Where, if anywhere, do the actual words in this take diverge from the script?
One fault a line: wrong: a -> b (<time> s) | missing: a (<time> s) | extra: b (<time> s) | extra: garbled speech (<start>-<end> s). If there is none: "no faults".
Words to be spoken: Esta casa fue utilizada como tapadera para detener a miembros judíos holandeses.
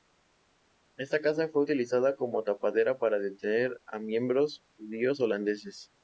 no faults